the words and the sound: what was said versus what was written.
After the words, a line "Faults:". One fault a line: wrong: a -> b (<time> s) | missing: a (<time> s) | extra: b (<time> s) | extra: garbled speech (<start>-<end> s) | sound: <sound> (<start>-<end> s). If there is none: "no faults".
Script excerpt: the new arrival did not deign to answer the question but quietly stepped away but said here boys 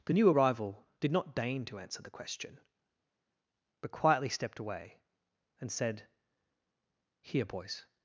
the new arrival did not deign to answer the question but quietly stepped away and said here boys
Faults:
wrong: but -> and (5.6 s)